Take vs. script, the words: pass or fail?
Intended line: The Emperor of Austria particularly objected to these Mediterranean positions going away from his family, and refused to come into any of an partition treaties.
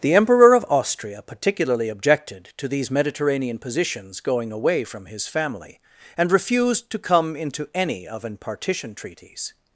pass